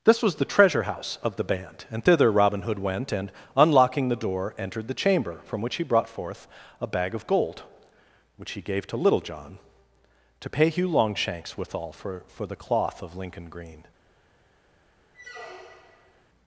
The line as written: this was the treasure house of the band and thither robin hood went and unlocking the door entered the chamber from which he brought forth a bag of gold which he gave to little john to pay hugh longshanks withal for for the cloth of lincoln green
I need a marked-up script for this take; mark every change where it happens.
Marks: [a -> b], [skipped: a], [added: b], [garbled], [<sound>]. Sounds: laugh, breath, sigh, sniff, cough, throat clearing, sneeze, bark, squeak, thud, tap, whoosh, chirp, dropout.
this was the treasure house of the band and thither robin hood went and unlocking the door entered the chamber from which he brought forth a bag of gold which he gave to little john to pay hugh longshanks withal for for the cloth of lincoln green [squeak]